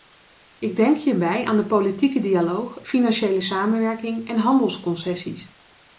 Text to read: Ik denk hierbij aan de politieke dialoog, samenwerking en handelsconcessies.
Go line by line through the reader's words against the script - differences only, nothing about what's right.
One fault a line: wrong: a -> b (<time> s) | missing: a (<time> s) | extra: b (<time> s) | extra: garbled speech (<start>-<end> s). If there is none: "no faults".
extra: financiële (2.9 s)